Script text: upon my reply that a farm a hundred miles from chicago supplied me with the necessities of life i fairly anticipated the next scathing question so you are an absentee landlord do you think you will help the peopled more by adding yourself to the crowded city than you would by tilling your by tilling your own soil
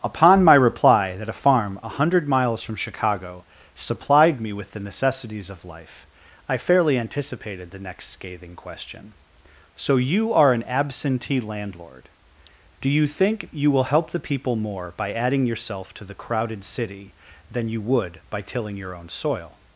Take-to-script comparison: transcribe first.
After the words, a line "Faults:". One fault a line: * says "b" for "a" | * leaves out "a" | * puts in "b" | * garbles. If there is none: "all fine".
upon my reply that a farm a hundred miles from chicago supplied me with the necessities of life i fairly anticipated the next scathing question so you are an absentee landlord do you think you will help the people more by adding yourself to the crowded city than you would by tilling your own soil
Faults:
* says "people" for "peopled"
* leaves out "by tilling your"